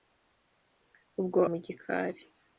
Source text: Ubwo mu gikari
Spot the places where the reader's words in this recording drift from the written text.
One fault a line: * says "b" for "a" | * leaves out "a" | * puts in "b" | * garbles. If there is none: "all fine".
all fine